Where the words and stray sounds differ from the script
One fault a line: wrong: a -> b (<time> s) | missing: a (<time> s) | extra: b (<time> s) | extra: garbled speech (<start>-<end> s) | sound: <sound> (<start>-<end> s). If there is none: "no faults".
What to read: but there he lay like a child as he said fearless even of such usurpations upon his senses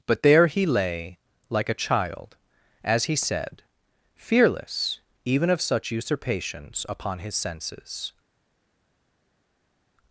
no faults